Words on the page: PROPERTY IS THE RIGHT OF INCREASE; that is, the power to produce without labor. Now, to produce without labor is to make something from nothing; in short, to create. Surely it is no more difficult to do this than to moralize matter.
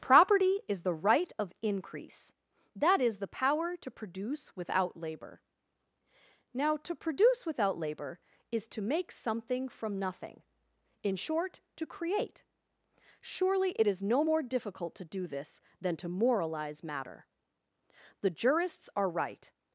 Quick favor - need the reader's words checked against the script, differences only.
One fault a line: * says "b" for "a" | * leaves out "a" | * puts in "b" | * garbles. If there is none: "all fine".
* puts in "The jurists are right"